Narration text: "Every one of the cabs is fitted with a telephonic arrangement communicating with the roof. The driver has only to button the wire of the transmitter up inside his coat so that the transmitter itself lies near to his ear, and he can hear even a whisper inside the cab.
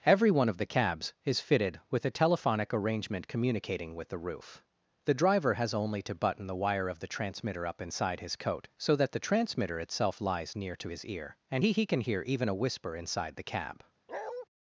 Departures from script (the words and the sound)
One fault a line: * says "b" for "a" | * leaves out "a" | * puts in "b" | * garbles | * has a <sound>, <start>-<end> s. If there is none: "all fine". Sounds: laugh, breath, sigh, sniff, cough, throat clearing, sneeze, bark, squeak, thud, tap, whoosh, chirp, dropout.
* puts in "he"
* has a bark, 14.1-14.5 s